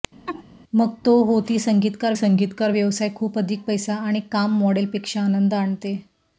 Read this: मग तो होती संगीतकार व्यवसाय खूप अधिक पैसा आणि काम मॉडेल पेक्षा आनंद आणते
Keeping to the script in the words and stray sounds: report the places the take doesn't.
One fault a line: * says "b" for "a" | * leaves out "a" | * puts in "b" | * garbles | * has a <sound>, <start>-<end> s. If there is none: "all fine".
* has a laugh, 0.3-0.4 s
* puts in "संगीतकार"